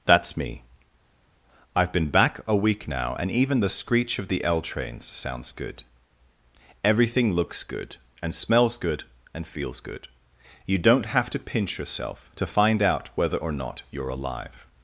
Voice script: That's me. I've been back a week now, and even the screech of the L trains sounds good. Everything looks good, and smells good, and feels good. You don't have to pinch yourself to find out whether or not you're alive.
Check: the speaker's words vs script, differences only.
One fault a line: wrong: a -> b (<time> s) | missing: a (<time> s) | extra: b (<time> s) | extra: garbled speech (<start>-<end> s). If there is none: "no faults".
no faults